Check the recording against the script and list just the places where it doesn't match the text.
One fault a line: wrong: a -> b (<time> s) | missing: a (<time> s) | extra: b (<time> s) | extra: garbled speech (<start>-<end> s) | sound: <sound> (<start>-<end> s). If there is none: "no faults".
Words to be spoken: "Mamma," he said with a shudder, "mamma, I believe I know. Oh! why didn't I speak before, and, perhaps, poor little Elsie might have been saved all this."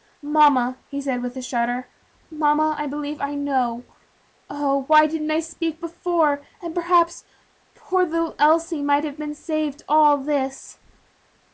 no faults